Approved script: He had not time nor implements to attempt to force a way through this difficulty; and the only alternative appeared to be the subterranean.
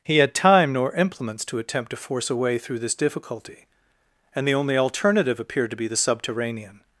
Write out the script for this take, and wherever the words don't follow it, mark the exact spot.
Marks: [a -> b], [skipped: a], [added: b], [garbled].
He had [skipped: not] time nor implements to attempt to force a way through this difficulty; and the only alternative appeared to be the subterranean.